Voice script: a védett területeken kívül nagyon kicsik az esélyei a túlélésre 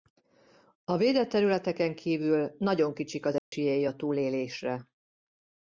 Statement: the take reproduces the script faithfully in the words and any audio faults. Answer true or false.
false